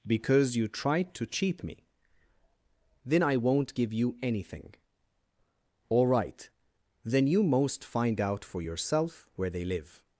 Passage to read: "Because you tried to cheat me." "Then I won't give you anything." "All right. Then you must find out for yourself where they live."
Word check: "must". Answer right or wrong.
wrong